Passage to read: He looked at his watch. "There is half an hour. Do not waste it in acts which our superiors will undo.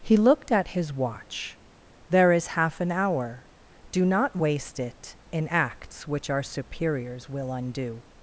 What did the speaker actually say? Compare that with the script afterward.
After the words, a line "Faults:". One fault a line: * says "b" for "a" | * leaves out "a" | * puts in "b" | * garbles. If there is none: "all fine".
He looked at his watch. "There is half an hour. Do not waste it in acts which our superiors will undo.
Faults:
all fine